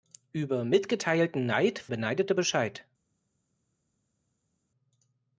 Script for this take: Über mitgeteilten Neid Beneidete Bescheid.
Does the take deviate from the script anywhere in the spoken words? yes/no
no